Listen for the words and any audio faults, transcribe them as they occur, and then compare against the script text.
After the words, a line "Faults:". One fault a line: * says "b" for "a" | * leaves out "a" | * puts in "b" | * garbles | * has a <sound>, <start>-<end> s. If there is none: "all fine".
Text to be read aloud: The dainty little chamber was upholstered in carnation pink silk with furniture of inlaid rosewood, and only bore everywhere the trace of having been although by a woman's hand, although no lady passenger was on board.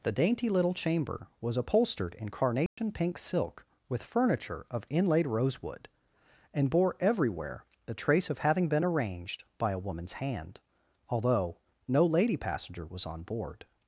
The dainty little chamber was upholstered in carnation pink silk with furniture of inlaid rosewood, and bore everywhere the trace of having been arranged by a woman's hand, although no lady passenger was on board.
Faults:
* has a dropout, 2.7-2.8 s
* leaves out "only"
* says "arranged" for "although"